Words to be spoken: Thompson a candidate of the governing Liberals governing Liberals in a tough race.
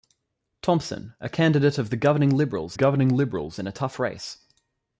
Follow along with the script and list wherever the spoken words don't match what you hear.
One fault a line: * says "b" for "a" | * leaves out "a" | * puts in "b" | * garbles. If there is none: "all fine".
all fine